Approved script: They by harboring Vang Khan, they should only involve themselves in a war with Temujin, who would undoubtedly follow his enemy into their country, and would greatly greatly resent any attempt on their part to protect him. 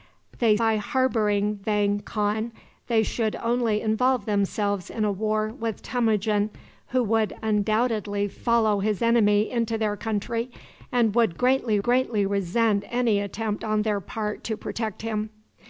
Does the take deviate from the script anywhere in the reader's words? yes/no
no